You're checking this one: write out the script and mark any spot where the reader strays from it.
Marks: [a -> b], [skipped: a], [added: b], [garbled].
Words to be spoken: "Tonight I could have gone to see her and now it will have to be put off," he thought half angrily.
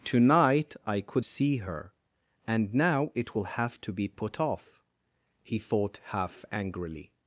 "Tonight I could [skipped: have gone to] see her and now it will have to be put off," he thought half angrily.